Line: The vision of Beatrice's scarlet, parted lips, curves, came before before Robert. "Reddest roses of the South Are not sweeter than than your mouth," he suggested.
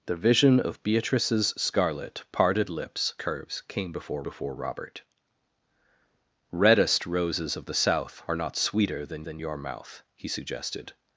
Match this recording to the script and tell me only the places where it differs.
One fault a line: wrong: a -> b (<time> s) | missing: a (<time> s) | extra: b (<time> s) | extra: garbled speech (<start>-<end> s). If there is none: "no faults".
no faults